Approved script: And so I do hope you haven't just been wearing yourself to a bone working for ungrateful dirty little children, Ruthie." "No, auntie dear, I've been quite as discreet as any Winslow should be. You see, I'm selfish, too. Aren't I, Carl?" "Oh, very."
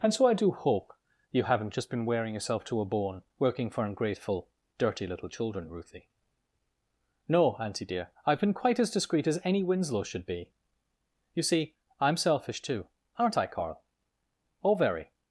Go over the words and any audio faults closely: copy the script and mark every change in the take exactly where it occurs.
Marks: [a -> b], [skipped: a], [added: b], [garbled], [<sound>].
And so I do hope you haven't just been wearing yourself to a bone working for ungrateful dirty little children, Ruthie." "No, auntie dear, I've been quite as discreet as any Winslow should be. You see, I'm selfish, too. Aren't I, Carl?" "Oh, very."